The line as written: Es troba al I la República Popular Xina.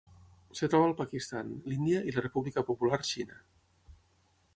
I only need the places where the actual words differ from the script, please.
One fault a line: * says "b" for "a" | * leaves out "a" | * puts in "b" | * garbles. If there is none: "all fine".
* puts in "Pakistan l'Índia"